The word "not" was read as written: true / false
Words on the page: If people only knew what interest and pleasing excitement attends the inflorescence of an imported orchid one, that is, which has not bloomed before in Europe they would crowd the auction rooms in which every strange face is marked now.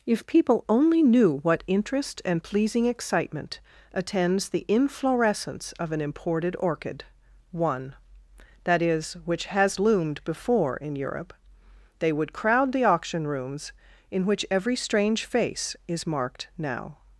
false